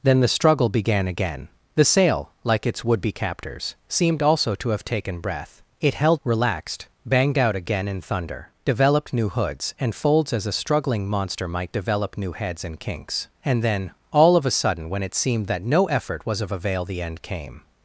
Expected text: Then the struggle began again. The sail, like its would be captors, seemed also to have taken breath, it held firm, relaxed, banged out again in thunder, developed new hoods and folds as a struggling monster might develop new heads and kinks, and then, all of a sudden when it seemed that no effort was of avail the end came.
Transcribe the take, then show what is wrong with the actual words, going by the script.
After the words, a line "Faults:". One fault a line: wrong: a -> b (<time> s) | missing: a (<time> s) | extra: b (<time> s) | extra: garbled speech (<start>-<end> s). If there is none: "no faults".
Then the struggle began again. The sail, like its would be captors, seemed also to have taken breath, it held relaxed, banged out again in thunder, developed new hoods and folds as a struggling monster might develop new heads and kinks, and then, all of a sudden when it seemed that no effort was of avail the end came.
Faults:
missing: firm (6.2 s)